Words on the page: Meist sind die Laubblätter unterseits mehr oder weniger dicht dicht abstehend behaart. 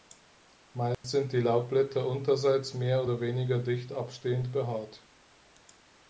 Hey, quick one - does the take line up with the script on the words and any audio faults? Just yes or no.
no